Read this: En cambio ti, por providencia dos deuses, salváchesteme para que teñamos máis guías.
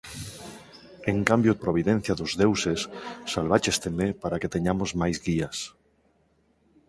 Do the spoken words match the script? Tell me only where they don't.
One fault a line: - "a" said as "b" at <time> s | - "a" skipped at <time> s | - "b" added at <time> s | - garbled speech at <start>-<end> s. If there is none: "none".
- "ti por" skipped at 1.5 s